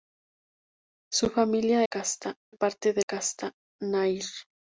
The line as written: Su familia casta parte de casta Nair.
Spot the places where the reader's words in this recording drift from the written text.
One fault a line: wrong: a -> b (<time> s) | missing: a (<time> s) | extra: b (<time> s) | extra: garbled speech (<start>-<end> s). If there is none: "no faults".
no faults